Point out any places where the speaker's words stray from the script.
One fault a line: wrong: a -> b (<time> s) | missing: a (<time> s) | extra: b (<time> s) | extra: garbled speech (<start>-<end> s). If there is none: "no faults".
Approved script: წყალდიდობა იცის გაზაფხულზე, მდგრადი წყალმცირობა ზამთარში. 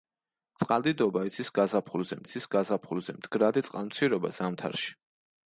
extra: იცის გაზაფხულზე (2.2 s)